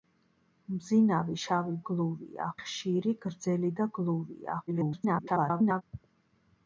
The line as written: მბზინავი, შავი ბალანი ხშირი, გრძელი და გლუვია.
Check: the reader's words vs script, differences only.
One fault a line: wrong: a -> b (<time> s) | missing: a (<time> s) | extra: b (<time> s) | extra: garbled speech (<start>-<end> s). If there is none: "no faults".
wrong: ბალანი -> გლუვია (1.9 s)
extra: garbled speech (4.7-5.8 s)